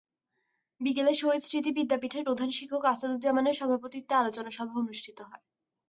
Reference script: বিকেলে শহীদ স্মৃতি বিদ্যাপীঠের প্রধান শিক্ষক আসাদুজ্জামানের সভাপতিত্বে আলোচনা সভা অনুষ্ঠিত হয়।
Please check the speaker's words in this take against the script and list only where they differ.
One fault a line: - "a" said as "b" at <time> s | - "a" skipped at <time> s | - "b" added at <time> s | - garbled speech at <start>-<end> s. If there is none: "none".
none